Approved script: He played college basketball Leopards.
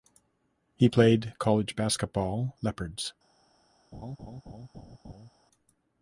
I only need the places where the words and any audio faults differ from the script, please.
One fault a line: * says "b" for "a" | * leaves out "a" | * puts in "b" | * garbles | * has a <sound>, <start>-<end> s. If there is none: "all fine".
* has a laugh, 3.9-5.3 s